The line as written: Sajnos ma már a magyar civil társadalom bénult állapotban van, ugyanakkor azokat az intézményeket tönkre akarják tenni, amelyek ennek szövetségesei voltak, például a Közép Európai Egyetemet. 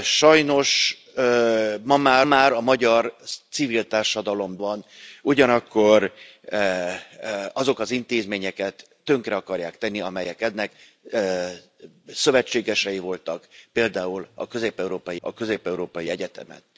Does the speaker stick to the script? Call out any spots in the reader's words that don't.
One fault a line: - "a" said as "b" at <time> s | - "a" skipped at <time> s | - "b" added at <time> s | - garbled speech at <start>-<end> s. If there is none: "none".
- "már" added at 2.2 s
- "bénult állapotban" skipped at 4.6 s
- "a Közép Európai" added at 15.2 s